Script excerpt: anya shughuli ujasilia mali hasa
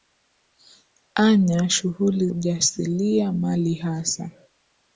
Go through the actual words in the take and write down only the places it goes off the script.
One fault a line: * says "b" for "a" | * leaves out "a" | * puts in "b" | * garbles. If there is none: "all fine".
all fine